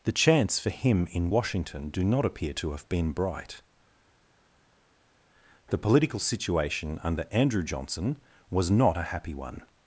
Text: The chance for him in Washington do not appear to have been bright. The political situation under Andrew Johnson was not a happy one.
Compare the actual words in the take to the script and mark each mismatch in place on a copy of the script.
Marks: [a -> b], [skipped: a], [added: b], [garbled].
The chance for him in Washington do not appear to have been bright. The political situation under Andrew Johnson was not a happy one.